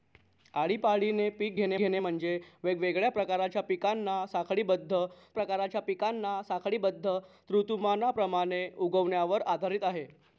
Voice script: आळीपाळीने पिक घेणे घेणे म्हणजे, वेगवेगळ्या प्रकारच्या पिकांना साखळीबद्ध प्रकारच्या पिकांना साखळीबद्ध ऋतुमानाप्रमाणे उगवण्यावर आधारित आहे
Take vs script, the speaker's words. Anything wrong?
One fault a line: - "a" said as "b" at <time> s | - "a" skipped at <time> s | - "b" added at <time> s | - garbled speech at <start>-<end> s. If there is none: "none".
none